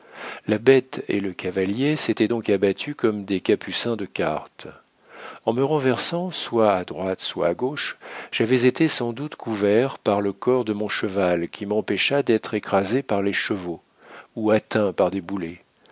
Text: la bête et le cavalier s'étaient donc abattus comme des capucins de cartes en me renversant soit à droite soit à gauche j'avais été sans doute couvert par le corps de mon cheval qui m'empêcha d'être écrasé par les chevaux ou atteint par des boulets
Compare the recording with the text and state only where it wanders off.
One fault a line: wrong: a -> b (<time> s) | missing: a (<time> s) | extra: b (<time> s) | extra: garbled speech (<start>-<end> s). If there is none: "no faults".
no faults